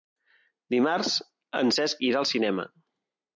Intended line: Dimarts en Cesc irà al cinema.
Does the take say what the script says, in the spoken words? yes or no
yes